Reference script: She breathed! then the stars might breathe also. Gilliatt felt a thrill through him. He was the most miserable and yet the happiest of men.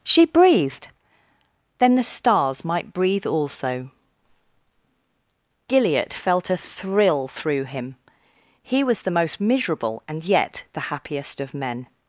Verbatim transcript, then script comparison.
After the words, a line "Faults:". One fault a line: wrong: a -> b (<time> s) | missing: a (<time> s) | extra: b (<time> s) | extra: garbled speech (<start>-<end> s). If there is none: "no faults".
She breathed! then the stars might breathe also. Gilliatt felt a thrill through him. He was the most miserable and yet the happiest of men.
Faults:
no faults